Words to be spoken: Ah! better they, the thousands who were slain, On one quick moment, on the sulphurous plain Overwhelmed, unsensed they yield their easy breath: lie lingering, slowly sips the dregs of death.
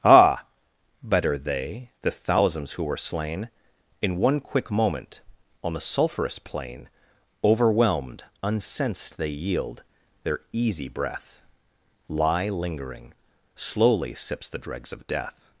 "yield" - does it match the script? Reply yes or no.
yes